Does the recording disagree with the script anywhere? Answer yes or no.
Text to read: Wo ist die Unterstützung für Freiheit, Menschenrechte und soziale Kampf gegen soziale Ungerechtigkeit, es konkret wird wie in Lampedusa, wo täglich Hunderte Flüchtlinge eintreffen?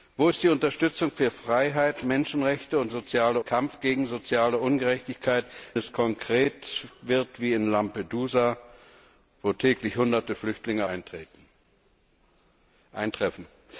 no